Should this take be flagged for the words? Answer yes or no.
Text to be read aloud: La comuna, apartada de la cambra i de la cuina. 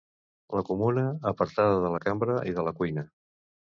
no